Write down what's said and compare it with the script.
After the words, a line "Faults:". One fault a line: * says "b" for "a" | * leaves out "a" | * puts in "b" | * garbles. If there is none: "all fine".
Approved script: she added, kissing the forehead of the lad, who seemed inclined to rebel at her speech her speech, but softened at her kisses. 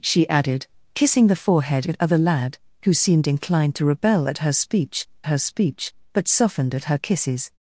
she added, kissing the forehead of the lad, who seemed inclined to rebel at her speech her speech, but softened at her kisses.
Faults:
all fine